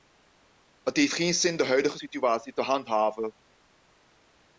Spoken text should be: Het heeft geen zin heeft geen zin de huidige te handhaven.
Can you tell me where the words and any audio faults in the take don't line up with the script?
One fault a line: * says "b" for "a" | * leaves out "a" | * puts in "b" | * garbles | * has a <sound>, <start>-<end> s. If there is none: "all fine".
* leaves out "heeft geen zin"
* puts in "situatie"